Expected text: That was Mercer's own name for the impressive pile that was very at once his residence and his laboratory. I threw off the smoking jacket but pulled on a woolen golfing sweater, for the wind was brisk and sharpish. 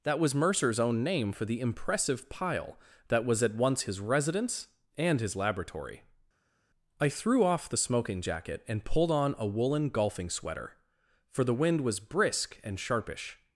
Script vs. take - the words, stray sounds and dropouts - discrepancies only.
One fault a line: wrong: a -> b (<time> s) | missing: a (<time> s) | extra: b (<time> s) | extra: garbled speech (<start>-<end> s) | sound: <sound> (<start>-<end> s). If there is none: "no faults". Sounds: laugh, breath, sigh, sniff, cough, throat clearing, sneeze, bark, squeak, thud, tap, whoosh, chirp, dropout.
missing: very (3.4 s)
wrong: but -> and (8.7 s)